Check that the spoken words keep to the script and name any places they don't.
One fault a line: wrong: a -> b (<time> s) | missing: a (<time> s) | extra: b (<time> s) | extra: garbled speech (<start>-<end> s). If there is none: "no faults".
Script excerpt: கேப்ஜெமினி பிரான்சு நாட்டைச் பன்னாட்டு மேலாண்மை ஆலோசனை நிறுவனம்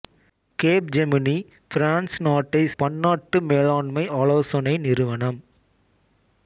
no faults